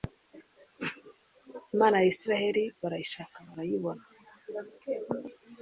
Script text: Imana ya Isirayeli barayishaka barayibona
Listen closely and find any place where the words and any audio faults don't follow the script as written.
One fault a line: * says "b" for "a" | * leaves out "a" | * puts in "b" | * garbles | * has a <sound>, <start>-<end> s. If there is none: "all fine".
all fine